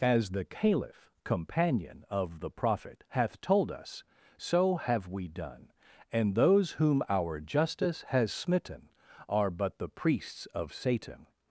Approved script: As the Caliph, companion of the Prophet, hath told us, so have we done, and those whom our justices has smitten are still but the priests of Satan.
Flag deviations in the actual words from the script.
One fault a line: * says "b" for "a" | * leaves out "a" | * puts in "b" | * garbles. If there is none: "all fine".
* says "justice" for "justices"
* leaves out "still"